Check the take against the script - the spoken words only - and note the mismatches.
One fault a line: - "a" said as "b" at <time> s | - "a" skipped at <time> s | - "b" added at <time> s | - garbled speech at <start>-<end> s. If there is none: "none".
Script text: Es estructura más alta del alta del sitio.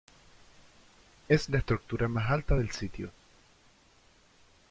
- "la" added at 1.5 s
- "alta del" skipped at 2.7 s